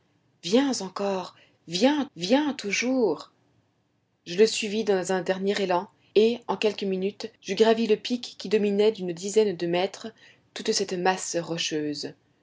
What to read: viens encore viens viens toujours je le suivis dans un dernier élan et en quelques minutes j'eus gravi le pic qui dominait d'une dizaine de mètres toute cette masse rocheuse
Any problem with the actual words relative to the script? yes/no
no